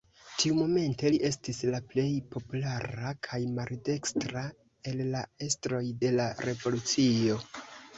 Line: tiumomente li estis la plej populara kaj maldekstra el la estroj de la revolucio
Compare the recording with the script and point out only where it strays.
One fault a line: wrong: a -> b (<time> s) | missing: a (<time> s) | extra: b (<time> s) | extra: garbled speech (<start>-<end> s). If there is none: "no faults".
no faults